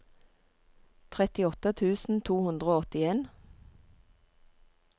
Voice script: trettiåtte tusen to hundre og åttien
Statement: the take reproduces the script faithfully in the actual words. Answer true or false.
true